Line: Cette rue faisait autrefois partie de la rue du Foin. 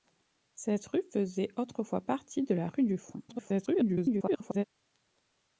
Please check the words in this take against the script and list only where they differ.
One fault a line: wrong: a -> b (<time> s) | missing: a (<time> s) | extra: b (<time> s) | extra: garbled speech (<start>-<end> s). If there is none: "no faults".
extra: garbled speech (3.3-4.6 s)